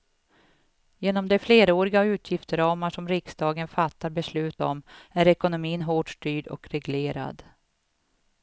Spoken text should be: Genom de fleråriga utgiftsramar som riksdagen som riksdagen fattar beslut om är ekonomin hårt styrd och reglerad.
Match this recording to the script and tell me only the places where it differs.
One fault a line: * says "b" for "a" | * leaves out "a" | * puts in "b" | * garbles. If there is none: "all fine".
* leaves out "som riksdagen"